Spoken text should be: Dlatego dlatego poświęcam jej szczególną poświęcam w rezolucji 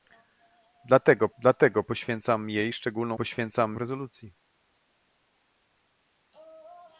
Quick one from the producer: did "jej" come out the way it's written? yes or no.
yes